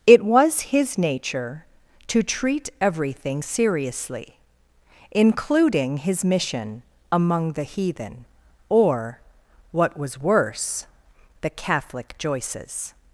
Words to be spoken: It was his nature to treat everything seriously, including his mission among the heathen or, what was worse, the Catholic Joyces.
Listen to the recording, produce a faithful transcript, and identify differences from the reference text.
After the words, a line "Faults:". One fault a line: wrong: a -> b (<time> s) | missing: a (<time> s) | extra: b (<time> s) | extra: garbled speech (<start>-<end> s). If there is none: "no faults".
It was his nature to treat everything seriously, including his mission among the heathen or, what was worse, the Catholic Joyces.
Faults:
no faults